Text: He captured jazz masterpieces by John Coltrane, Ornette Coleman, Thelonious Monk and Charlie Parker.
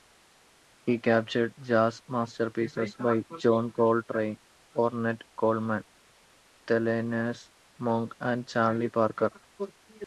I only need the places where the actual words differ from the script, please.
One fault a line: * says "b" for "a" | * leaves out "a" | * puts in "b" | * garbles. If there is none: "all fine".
all fine